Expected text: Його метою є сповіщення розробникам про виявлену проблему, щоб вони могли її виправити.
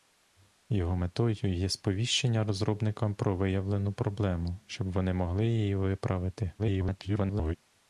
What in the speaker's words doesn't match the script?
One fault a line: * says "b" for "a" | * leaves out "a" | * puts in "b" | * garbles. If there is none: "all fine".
* garbles